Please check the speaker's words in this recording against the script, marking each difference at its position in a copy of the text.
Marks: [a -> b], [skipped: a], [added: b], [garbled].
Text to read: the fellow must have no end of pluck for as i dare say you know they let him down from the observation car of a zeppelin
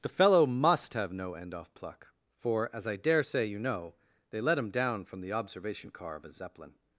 the fellow must have no end [of -> off] pluck for as i dare say you know they let him down from the observation car of a zeppelin